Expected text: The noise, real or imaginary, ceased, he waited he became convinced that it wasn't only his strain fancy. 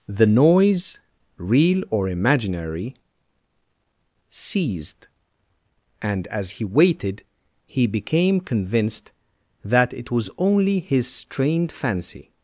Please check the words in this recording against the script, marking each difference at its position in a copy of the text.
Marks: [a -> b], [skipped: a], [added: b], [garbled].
The noise, real or imaginary, ceased, [added: and as] he waited he became convinced that it [wasn't -> was] only his [strain -> strained] fancy.